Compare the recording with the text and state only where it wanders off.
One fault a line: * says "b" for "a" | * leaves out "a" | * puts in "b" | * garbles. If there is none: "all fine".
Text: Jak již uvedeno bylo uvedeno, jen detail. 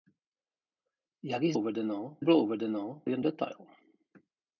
all fine